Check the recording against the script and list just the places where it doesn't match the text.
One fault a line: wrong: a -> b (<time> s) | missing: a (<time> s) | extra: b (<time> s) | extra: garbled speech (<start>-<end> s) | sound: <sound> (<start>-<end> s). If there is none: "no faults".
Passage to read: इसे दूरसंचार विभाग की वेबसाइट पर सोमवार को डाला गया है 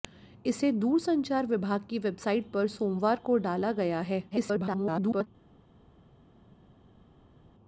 extra: garbled speech (4.3-5.3 s)